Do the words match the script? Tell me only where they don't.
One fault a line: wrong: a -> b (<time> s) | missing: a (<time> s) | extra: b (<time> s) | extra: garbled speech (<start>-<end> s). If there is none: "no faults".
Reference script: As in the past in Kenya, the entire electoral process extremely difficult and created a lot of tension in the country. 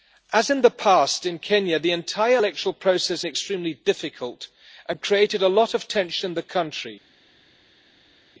no faults